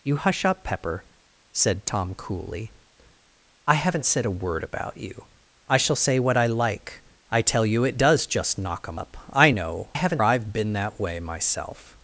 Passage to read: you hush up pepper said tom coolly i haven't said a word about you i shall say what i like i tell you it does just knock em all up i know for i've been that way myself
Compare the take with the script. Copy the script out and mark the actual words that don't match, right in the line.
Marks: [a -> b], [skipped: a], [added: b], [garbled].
you hush up pepper said tom coolly i haven't said a word about you i shall say what i like i tell you it does just knock em [skipped: all] up i know [for -> haven't] i've been that way myself